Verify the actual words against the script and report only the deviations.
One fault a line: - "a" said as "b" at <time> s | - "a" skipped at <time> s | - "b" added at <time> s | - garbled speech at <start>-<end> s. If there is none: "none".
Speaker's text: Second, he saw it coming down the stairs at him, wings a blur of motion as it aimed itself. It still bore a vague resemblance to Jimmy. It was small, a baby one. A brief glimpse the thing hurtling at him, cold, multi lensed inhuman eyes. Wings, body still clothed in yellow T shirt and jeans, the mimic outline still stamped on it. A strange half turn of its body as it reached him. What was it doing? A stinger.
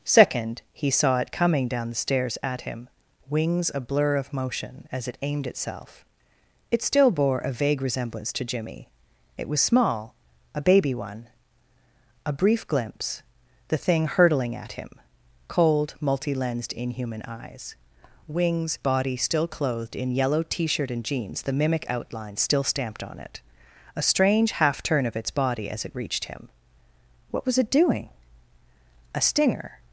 none